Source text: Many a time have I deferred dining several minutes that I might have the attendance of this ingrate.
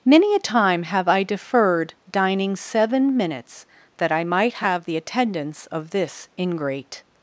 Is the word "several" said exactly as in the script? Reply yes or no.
no